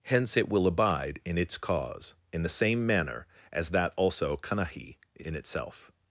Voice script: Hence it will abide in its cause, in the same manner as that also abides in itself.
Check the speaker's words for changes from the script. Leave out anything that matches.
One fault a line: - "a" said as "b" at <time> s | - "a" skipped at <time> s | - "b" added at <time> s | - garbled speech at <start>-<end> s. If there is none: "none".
- "abides" said as "kanahi" at 4.4 s